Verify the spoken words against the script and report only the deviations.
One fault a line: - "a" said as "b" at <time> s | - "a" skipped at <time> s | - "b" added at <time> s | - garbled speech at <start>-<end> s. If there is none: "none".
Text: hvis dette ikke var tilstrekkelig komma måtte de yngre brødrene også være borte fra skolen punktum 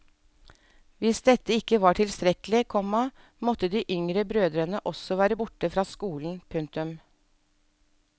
none